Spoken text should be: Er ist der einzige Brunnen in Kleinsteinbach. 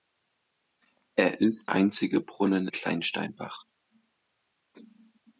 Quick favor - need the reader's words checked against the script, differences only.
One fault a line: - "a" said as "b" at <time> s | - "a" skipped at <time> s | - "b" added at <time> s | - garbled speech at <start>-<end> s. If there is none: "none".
- "der" skipped at 1.7 s
- "in" skipped at 2.7 s